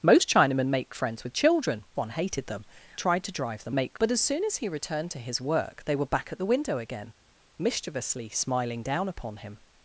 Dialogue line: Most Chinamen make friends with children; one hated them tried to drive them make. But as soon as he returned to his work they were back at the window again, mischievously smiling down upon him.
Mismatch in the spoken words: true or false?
false